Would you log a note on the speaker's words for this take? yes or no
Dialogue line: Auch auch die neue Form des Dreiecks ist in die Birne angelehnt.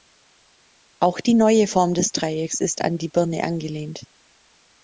yes